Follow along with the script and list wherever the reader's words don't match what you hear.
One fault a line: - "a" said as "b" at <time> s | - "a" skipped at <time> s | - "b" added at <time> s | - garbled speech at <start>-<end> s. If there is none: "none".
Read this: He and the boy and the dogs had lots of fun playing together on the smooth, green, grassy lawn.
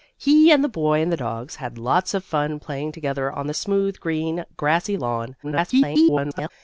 - garbled speech at 5.4-6.5 s